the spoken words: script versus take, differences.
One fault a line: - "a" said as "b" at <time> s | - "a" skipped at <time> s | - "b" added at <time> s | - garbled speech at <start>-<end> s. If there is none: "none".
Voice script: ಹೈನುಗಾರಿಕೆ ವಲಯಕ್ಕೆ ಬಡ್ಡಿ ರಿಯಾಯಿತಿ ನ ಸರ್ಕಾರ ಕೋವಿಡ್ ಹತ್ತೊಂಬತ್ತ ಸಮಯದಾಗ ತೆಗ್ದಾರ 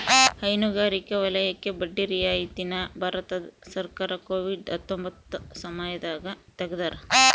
- "ಭಾರತ" added at 3.0 s